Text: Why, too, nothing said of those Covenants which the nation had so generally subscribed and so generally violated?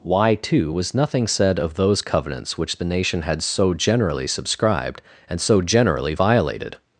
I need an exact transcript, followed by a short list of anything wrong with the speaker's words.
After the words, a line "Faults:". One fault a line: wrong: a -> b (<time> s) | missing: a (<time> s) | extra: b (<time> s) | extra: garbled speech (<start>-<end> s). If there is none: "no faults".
Why, too, was nothing said of those Covenants which the nation had so generally subscribed and so generally violated?
Faults:
extra: was (0.7 s)